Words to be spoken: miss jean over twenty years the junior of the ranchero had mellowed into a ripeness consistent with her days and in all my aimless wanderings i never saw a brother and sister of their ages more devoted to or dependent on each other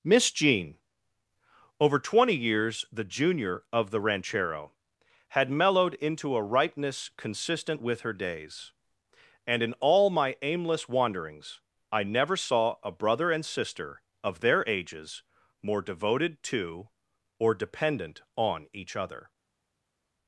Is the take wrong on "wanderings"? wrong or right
right